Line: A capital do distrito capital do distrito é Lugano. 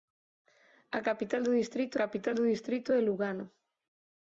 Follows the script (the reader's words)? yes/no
yes